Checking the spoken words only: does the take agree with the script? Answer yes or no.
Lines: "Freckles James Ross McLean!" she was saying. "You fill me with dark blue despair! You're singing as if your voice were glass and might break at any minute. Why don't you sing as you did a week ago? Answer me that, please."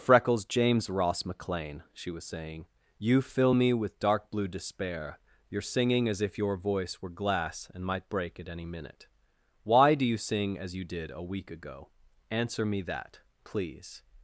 no